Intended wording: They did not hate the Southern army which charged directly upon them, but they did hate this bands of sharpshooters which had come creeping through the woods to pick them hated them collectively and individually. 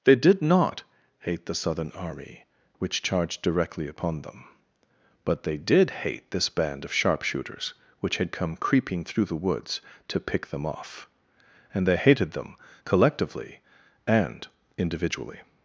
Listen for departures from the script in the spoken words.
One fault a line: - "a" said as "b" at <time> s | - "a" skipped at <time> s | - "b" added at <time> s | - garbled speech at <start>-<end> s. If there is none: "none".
- "bands" said as "band" at 6.5 s
- "off and they" added at 10.7 s